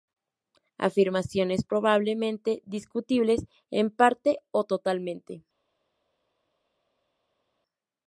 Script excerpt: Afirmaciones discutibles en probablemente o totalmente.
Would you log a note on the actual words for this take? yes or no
yes